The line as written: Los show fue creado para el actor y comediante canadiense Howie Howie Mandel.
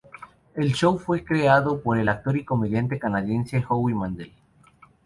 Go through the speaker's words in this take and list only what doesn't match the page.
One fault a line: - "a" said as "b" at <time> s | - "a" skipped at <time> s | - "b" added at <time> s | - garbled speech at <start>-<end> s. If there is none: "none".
- "Los" said as "El" at 0.6 s
- "para" said as "por" at 1.8 s
- "Howie" skipped at 3.9 s